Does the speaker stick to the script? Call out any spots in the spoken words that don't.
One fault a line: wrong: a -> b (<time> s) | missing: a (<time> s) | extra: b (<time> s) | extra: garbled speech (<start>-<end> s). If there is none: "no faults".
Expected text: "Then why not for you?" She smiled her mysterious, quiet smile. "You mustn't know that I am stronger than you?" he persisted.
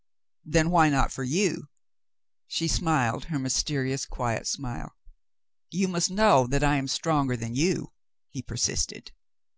wrong: mustn't -> must (5.9 s)